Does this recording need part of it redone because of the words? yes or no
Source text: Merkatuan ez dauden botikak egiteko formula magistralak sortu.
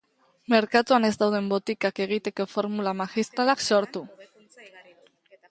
no